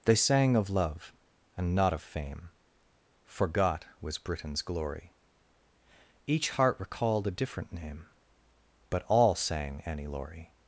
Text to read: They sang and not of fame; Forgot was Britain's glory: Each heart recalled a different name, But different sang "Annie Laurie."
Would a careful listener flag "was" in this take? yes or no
no